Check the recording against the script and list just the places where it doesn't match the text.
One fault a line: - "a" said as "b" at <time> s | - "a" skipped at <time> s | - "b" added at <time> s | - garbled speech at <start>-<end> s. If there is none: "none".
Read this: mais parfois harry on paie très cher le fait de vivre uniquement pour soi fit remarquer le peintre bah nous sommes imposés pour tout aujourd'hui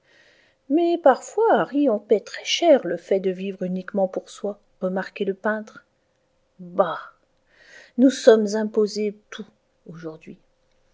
- "fit" skipped at 4.6 s
- "pour" skipped at 9.1 s